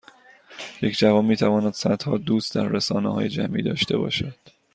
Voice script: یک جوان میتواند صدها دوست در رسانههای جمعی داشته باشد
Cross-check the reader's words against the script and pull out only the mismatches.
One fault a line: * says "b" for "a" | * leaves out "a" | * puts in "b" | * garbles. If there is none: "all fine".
all fine